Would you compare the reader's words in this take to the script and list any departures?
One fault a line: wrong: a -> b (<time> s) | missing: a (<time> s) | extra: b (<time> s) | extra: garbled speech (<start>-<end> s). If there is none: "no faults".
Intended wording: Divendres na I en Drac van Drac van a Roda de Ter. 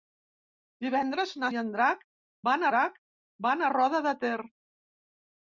no faults